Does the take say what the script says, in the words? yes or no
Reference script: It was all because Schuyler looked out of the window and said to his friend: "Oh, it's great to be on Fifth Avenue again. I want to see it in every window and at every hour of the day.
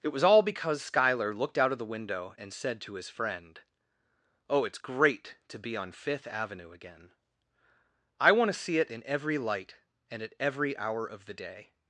no